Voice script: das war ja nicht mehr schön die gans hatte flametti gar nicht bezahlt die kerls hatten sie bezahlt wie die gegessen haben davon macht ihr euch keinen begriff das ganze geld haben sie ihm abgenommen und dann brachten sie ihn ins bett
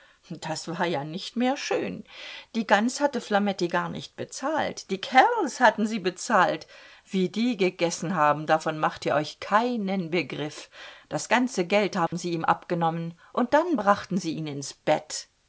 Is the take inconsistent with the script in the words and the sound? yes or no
yes